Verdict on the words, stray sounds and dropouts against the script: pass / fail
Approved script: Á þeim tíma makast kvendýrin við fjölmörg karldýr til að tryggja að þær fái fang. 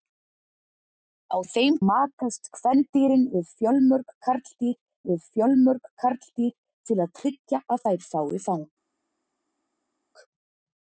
fail